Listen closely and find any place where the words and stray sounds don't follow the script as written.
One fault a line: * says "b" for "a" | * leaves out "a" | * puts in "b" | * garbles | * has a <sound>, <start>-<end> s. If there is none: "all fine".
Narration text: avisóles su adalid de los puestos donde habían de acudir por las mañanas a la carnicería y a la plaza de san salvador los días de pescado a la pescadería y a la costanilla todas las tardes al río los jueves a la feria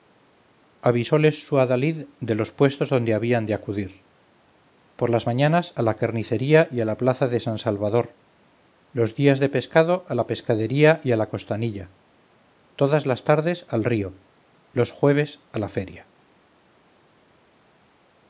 all fine